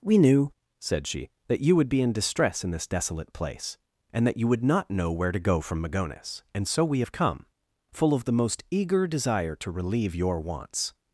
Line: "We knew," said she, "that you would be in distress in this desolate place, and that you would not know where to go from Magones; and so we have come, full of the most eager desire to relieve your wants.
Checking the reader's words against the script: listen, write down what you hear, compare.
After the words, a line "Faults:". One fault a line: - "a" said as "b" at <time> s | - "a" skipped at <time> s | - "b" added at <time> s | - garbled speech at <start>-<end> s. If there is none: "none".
"We knew," said she, "that you would be in distress in this desolate place, and that you would not know where to go from Magones; and so we have come, full of the most eager desire to relieve your wants.
Faults:
none